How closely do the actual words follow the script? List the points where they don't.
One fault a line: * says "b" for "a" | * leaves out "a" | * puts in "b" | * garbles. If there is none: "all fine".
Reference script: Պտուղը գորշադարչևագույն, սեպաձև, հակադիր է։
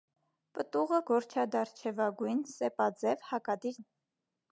all fine